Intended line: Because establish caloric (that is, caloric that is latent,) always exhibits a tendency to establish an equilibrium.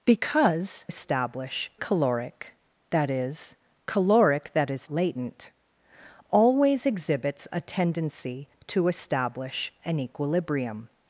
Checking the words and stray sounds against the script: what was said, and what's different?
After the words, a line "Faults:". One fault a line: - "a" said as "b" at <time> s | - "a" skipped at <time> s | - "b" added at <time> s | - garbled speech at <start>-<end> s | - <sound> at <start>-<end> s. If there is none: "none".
Because establish caloric (that is, caloric that is latent,) always exhibits a tendency to establish an equilibrium.
Faults:
none